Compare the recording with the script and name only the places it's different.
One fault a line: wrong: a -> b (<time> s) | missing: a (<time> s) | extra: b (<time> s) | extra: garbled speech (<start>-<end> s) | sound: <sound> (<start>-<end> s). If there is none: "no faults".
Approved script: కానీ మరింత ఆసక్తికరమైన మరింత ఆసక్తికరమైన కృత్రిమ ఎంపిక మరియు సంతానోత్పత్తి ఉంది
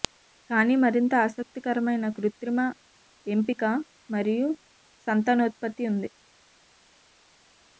missing: మరింత ఆసక్తికరమైన (2.0 s)